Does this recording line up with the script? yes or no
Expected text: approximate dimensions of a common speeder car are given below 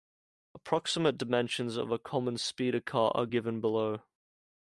yes